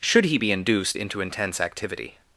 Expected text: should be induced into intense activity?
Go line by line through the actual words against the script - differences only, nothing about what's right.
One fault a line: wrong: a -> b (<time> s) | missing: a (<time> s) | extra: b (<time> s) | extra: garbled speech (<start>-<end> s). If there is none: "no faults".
extra: he (0.2 s)